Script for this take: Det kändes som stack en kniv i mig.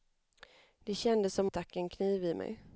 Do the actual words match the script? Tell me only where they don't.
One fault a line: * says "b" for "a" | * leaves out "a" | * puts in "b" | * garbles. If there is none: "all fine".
all fine